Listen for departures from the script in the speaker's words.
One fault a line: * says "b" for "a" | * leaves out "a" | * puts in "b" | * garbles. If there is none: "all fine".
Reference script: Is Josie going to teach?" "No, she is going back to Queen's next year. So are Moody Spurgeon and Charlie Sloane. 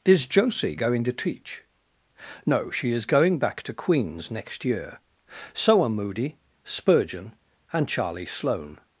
all fine